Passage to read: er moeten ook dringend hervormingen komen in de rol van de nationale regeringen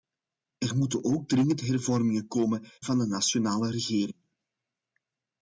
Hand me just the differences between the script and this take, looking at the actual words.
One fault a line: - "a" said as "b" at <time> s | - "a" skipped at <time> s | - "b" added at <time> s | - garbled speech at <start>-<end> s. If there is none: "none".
- "in de rol" skipped at 2.6 s